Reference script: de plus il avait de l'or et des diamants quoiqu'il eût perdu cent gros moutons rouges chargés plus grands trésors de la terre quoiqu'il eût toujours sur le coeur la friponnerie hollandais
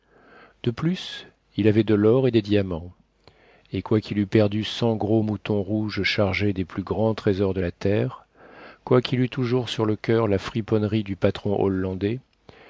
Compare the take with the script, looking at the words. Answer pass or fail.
fail